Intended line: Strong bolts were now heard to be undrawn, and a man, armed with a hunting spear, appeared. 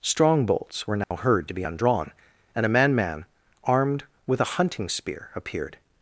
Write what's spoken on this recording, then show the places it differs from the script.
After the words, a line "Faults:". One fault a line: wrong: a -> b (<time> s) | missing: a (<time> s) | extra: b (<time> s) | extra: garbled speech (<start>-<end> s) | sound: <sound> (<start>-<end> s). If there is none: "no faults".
Strong bolts were now heard to be undrawn, and a man man, armed with a hunting spear, appeared.
Faults:
sound: dropout (1.0-1.1 s)
extra: man (2.9 s)